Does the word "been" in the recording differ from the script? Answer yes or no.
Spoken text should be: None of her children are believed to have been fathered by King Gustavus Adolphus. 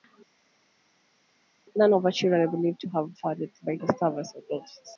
yes